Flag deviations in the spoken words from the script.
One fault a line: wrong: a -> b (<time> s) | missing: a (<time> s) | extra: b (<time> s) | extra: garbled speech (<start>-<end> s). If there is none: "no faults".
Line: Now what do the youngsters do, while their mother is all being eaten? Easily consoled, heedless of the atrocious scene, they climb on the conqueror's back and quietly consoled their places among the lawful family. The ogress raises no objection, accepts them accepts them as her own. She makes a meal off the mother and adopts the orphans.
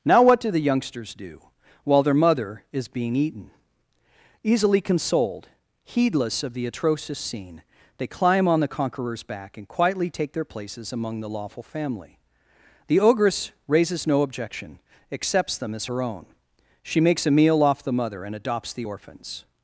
missing: all (2.9 s)
wrong: consoled -> take (10.1 s)
missing: accepts them (15.7 s)